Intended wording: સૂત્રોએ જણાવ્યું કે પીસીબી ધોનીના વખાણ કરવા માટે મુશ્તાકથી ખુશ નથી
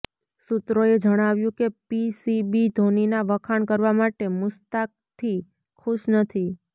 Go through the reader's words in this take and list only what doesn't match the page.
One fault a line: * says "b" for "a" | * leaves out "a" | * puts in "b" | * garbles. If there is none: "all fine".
all fine